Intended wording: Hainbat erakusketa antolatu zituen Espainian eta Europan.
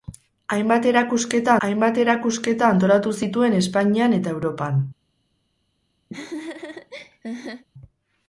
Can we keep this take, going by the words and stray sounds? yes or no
no